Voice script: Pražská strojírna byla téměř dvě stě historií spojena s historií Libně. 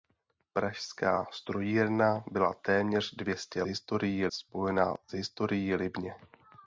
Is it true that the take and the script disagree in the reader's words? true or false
false